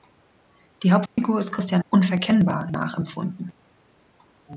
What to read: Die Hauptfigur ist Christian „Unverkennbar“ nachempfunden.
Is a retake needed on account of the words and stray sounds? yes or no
yes